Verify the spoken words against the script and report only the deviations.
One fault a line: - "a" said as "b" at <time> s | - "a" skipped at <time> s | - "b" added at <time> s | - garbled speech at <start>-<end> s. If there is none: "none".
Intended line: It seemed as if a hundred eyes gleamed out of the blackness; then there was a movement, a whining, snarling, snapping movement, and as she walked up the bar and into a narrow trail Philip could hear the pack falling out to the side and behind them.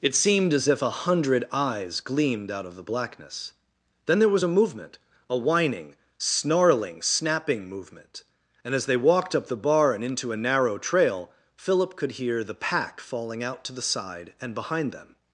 - "she" said as "they" at 8.8 s